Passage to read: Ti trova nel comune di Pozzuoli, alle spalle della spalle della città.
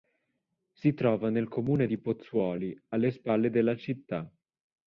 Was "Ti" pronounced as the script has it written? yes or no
no